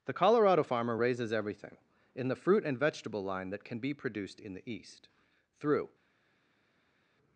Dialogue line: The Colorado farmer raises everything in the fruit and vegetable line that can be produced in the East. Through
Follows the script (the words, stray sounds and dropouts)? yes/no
yes